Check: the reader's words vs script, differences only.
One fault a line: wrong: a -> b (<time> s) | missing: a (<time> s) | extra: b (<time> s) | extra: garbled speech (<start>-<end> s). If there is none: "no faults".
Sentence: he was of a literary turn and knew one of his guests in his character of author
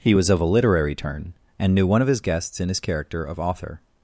no faults